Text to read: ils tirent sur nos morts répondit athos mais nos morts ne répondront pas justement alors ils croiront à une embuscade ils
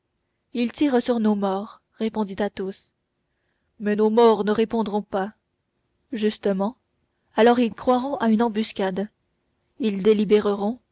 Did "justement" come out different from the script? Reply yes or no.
no